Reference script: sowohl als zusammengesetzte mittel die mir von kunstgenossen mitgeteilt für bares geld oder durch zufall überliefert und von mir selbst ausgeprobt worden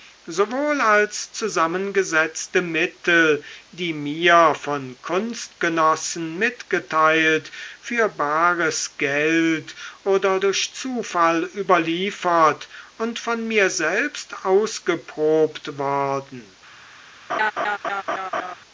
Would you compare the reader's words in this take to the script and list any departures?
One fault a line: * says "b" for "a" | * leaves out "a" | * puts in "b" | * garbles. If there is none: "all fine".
all fine